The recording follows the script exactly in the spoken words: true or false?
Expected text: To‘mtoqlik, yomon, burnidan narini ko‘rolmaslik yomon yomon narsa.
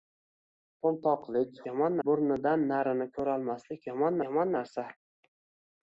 true